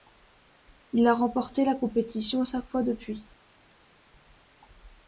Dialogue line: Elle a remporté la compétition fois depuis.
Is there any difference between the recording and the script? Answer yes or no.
yes